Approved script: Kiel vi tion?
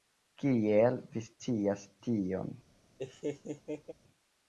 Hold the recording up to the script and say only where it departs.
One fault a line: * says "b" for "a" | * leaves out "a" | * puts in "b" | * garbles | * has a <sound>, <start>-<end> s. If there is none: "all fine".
* puts in "scias"
* has a laugh, 3.0-3.9 s